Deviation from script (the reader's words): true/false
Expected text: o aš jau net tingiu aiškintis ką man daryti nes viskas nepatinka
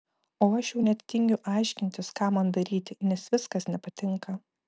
false